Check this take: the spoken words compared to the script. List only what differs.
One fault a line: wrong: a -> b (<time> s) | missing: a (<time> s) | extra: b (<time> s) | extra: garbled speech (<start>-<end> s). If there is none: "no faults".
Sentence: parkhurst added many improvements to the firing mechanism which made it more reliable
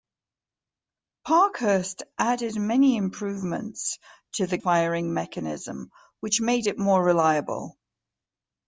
no faults